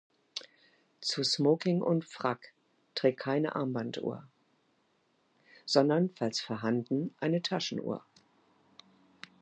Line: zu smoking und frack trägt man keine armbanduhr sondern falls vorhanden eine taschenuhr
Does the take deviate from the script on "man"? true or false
true